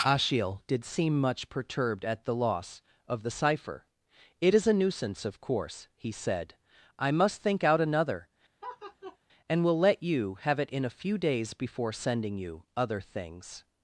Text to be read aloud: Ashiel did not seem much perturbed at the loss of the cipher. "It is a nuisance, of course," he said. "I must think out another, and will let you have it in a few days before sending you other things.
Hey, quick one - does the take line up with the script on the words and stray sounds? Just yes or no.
no